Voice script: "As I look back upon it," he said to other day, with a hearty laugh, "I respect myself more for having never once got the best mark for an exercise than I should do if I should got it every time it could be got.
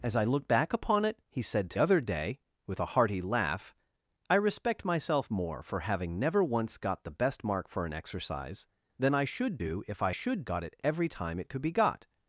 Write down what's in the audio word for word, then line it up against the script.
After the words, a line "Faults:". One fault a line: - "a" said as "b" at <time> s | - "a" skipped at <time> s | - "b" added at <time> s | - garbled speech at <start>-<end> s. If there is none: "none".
"As I look back upon it," he said to other day, with a hearty laugh, "I respect myself more for having never once got the best mark for an exercise than I should do if I should got it every time it could be got.
Faults:
none